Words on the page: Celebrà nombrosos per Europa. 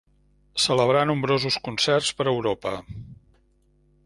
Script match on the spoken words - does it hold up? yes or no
no